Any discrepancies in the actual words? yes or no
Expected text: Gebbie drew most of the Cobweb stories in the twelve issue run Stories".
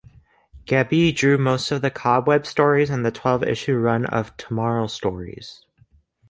yes